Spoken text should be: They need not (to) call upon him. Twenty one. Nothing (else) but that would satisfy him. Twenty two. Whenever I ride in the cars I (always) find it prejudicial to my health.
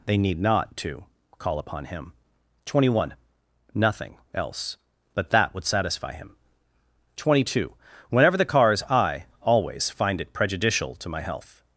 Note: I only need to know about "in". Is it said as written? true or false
false